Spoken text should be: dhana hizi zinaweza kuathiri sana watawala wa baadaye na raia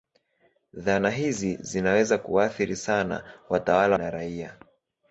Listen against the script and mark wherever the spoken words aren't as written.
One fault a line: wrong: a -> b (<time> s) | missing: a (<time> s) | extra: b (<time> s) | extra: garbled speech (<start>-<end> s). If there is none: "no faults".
missing: wa baadaye (4.0 s)